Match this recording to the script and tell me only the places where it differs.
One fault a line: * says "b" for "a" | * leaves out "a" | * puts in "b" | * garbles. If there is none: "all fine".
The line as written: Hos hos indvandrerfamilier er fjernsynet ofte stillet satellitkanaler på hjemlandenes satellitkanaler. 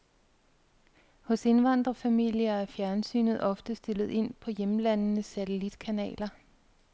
* leaves out "hos"
* says "ind" for "satellitkanaler"